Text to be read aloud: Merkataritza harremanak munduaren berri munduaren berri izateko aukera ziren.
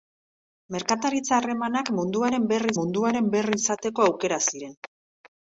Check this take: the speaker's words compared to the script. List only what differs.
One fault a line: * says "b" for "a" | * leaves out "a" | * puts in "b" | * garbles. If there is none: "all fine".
all fine